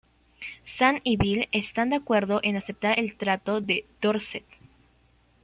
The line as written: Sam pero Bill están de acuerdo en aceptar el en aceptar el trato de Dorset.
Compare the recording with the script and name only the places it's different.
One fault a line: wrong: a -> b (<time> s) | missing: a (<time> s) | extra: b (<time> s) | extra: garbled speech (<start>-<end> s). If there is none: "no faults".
wrong: pero -> y (1.0 s)
missing: en aceptar el (3.2 s)